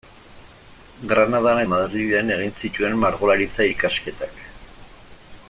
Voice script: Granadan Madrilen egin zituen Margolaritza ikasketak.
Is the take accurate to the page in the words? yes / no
yes